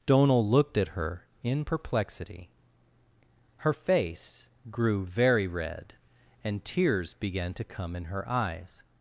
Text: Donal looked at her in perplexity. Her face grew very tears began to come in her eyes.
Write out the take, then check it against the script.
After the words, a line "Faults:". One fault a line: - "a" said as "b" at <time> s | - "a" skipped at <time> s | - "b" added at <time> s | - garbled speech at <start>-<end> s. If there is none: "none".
Donal looked at her in perplexity. Her face grew very red, and tears began to come in her eyes.
Faults:
- "red and" added at 5.5 s